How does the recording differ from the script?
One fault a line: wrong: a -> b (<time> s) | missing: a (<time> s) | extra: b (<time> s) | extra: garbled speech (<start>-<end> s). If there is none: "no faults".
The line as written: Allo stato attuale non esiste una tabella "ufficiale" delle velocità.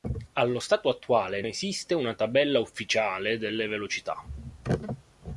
missing: non (1.4 s)